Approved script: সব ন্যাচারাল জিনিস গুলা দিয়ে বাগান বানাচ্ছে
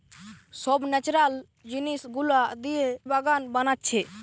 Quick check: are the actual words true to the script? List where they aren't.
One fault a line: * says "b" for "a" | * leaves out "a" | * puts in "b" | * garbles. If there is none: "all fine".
all fine